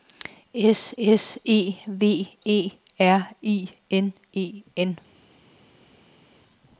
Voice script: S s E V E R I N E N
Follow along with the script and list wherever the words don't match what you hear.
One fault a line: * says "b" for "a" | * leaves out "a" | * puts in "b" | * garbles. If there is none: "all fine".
all fine